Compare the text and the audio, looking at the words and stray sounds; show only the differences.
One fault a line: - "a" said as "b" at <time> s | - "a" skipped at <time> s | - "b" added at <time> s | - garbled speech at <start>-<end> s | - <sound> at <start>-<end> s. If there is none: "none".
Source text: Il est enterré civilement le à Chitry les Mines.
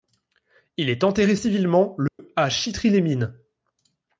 - dropout at 2.1-2.2 s